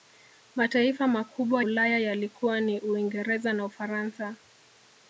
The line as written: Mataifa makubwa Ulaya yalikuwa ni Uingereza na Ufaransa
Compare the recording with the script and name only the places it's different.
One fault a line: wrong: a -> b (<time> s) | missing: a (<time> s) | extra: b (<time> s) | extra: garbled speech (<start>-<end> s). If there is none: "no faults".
no faults